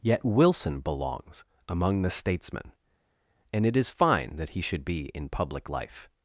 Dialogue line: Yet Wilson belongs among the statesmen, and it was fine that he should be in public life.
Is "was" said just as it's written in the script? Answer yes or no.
no